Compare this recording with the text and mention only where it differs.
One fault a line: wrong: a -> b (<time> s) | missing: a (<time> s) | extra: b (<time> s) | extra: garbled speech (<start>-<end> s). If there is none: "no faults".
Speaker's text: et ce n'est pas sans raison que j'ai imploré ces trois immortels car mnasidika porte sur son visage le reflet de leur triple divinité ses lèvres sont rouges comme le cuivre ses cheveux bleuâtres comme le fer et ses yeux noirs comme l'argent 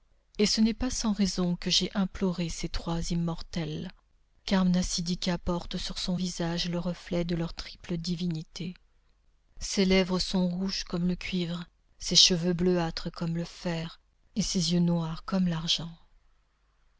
no faults